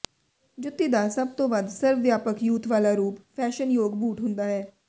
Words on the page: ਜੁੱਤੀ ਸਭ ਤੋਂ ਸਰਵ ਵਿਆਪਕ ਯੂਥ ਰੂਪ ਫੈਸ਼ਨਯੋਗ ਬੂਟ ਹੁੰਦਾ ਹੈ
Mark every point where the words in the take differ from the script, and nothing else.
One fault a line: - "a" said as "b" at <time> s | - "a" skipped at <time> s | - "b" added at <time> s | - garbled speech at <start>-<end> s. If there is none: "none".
- "ਦਾ" added at 0.9 s
- "ਵੱਧ" added at 1.5 s
- "ਵਾਲਾ" added at 2.7 s